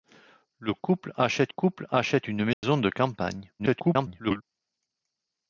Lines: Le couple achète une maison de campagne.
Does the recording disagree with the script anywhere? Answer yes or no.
yes